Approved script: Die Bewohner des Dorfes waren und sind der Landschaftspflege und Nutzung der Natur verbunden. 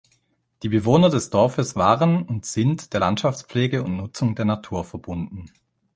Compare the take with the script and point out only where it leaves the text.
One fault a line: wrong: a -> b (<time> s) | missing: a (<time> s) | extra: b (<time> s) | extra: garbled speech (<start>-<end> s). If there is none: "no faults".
no faults